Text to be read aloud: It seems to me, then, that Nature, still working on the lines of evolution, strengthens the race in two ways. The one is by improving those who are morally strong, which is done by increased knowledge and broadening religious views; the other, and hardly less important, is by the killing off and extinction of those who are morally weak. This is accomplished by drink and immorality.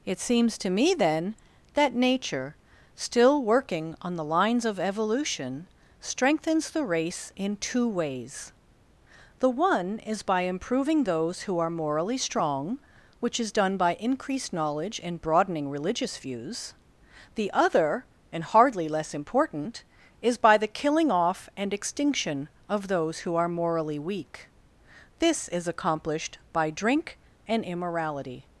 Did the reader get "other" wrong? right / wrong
right